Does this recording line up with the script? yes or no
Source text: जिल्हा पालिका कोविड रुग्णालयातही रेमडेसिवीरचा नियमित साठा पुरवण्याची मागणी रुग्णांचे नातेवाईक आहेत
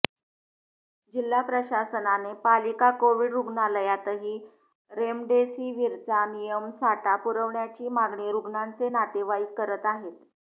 no